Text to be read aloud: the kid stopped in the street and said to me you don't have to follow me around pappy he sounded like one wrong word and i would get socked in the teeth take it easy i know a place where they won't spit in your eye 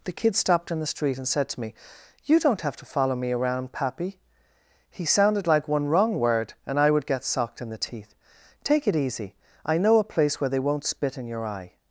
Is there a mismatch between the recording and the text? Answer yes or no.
no